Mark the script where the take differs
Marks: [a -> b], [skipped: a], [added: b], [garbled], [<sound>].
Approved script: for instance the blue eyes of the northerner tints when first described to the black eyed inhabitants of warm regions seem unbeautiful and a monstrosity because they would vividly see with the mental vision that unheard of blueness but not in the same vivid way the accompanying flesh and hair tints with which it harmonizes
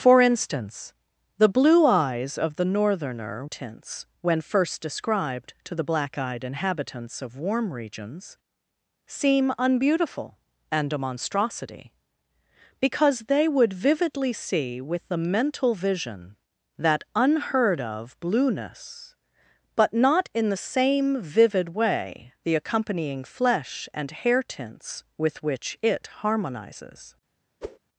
for instance the blue eyes of the northerner tints when first described to the black eyed inhabitants of warm regions seem unbeautiful and a monstrosity because they would vividly see with the mental vision that unheard of blueness but not in the same vivid way the accompanying flesh and hair tints with which it harmonizes [whoosh]